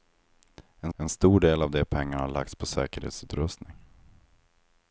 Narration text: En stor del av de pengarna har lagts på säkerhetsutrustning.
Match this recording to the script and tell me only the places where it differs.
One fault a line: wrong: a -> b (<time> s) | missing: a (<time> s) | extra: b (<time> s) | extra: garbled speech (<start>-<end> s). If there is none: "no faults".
extra: en (0.9 s)